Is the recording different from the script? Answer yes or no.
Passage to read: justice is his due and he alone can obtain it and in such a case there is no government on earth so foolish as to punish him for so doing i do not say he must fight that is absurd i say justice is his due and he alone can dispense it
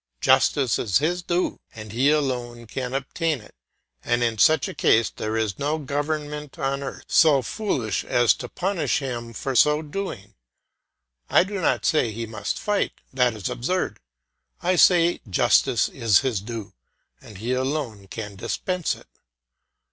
no